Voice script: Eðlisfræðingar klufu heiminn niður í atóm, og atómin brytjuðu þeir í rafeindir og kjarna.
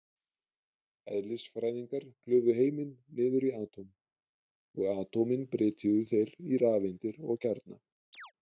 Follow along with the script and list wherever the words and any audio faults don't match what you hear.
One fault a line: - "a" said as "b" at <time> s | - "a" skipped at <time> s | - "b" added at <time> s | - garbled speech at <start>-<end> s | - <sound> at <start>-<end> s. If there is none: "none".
- chirp at 8.1-8.3 s